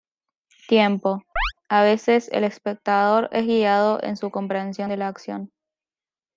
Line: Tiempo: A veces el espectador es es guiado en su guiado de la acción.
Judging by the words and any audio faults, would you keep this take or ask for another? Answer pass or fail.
fail